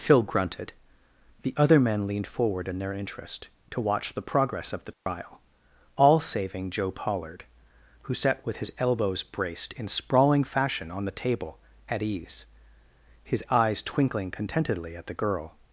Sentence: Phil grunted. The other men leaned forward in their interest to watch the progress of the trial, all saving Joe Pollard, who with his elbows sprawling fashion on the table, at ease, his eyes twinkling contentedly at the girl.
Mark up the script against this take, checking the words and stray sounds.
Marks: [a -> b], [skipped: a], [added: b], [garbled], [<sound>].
Phil grunted. The other men leaned forward in their interest to watch the progress of the trial, [dropout] all saving Joe Pollard, who [added: sat] with his elbows [added: braced in] sprawling fashion on the table, at ease, his eyes twinkling contentedly at the girl.